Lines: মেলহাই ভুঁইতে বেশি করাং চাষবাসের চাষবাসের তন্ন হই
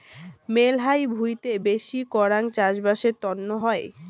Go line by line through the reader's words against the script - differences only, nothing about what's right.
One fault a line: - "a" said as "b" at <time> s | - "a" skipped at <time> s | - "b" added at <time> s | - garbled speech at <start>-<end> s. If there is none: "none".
- "চাষবাসের" skipped at 3.1 s